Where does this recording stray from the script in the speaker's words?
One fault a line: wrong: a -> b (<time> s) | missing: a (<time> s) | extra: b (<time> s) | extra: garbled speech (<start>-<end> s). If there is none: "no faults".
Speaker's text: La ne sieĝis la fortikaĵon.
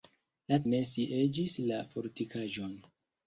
no faults